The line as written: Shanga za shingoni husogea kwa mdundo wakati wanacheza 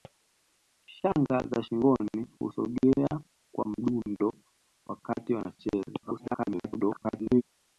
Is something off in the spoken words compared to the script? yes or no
yes